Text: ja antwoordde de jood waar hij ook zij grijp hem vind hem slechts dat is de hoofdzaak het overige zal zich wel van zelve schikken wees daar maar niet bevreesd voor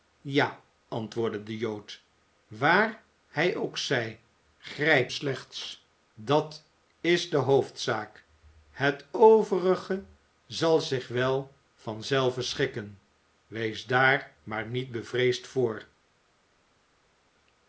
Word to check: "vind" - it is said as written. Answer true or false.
false